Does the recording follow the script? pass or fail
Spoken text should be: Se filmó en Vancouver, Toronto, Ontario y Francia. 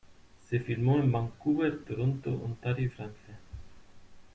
pass